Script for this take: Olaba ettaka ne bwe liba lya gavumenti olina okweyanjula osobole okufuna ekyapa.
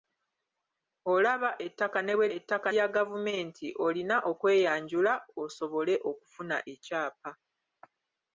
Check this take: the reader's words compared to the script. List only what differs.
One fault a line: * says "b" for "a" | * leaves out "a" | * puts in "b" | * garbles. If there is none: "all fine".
* says "ettaka" for "liba"